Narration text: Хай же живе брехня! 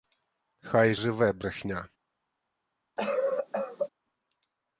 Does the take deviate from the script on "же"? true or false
true